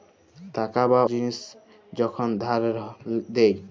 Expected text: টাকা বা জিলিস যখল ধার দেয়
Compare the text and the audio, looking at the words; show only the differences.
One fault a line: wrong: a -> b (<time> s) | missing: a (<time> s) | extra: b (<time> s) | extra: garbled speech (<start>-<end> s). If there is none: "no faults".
no faults